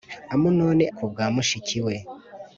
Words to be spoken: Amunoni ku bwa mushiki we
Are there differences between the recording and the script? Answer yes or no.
no